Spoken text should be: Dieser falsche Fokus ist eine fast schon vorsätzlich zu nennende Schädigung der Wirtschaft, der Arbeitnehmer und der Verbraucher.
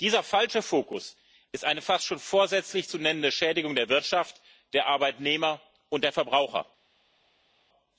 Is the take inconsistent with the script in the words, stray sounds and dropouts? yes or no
no